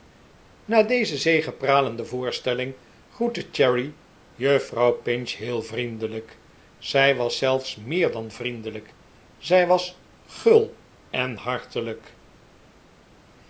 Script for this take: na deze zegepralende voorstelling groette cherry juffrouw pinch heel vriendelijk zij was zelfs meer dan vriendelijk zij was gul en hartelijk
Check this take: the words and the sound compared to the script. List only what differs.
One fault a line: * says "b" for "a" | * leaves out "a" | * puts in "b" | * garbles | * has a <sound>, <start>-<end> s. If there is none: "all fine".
all fine